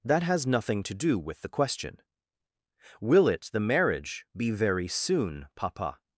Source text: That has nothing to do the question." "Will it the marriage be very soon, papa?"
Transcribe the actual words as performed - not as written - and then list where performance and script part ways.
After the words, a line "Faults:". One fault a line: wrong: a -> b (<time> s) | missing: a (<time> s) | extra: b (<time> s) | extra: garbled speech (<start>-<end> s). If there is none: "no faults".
That has nothing to do with the question." "Will it the marriage be very soon, papa?"
Faults:
extra: with (1.2 s)